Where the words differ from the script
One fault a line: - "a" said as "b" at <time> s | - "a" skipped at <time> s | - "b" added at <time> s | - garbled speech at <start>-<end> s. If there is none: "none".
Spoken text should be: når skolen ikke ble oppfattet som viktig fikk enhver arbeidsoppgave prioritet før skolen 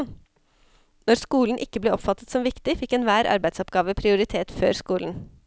none